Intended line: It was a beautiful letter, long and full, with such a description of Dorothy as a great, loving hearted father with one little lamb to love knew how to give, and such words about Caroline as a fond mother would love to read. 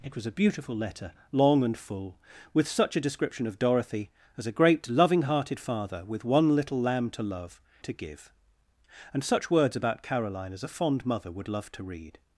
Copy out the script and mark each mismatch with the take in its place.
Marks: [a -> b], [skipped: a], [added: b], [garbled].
It was a beautiful letter, long and full, with such a description of Dorothy as a great, loving hearted father with one little lamb to love [skipped: knew how] to give, and such words about Caroline as a fond mother would love to read.